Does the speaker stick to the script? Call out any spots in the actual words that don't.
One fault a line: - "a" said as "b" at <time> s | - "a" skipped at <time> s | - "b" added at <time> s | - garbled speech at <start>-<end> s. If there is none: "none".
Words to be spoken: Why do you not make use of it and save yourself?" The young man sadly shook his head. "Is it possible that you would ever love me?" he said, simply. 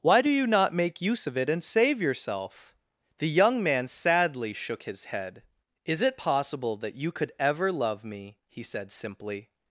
- "would" said as "could" at 7.1 s